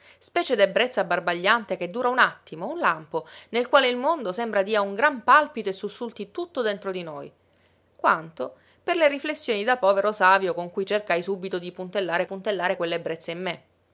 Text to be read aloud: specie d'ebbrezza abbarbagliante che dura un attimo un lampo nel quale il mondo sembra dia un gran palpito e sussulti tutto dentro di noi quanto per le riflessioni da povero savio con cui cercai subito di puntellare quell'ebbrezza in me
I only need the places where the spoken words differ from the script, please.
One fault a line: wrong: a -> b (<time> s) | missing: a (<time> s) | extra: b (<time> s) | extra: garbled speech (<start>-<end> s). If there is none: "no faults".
extra: puntellare (12.3 s)